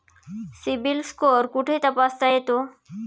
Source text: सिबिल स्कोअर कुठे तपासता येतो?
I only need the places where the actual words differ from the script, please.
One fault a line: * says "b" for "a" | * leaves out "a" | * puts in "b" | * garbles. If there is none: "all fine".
all fine